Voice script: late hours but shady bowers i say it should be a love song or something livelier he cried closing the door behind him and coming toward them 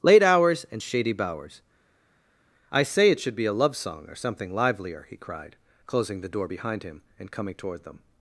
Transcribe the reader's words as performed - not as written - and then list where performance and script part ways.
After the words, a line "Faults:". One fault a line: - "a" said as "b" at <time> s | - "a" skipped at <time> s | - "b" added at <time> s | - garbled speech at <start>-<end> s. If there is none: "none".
late hours and shady bowers i say it should be a love song or something livelier he cried closing the door behind him and coming toward them
Faults:
- "but" said as "and" at 0.7 s